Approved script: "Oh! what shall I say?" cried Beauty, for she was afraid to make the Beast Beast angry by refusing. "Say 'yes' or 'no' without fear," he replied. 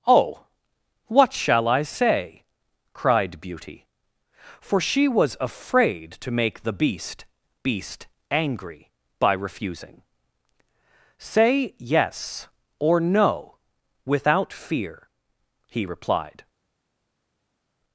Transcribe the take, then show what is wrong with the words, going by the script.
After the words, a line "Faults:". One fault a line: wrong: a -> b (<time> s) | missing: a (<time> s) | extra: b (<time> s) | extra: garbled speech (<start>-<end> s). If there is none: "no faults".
"Oh! what shall I say?" cried Beauty, for she was afraid to make the Beast Beast angry by refusing. "Say 'yes' or 'no' without fear," he replied.
Faults:
no faults